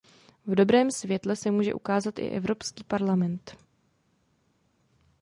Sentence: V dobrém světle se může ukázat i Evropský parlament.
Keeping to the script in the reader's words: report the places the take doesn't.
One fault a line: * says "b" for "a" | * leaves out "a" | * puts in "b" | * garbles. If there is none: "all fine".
all fine